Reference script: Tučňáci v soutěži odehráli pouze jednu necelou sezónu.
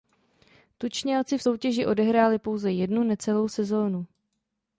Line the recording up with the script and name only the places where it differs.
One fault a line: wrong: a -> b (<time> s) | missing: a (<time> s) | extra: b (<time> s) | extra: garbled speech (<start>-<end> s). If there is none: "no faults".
no faults